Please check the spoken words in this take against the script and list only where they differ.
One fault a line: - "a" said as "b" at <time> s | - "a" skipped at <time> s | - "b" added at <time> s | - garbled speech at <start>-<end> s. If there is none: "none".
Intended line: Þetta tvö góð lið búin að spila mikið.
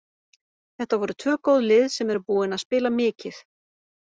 - "voru" added at 1.0 s
- "sem eru" added at 2.0 s